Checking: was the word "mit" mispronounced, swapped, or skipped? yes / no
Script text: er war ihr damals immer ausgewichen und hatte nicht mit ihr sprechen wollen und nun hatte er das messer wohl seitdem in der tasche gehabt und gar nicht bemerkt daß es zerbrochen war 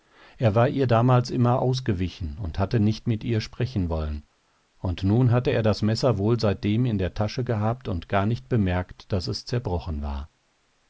no